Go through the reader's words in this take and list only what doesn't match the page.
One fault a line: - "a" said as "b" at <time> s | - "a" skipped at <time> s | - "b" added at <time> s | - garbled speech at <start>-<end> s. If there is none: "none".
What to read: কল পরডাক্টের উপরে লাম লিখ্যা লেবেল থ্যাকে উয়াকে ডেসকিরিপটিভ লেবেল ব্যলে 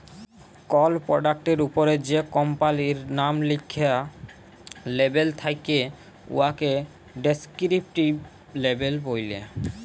- "যে কম্পালির" added at 2.1 s